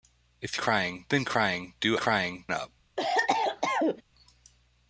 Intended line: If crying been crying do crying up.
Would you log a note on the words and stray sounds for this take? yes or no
yes